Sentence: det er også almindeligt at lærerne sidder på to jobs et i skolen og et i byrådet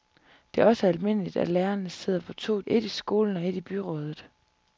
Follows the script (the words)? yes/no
no